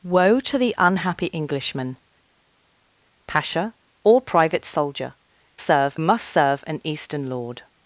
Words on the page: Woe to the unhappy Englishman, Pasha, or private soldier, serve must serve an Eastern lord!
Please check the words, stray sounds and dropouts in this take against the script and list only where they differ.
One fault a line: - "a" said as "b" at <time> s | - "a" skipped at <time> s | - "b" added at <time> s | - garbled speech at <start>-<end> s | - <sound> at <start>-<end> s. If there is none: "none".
none